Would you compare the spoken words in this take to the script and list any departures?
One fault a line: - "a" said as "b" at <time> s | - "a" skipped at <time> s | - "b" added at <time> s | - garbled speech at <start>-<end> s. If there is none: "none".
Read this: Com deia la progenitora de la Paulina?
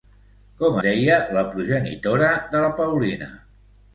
none